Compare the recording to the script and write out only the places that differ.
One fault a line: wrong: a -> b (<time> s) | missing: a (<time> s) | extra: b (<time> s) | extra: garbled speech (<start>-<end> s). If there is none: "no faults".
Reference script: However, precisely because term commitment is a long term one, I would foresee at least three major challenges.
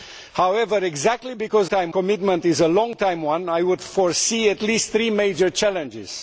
no faults